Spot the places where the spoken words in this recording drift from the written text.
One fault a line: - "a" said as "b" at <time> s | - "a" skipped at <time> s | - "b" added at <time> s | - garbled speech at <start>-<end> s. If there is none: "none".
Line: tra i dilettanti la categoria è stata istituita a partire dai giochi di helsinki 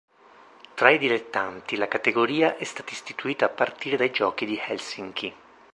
none